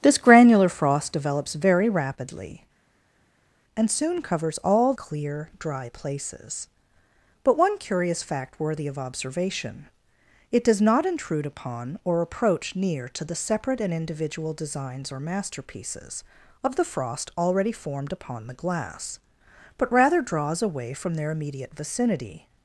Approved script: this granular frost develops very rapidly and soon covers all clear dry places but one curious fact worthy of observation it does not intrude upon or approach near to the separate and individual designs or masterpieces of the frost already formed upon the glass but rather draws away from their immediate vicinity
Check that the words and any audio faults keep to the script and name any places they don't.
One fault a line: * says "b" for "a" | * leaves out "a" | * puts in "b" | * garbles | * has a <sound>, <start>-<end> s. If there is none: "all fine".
all fine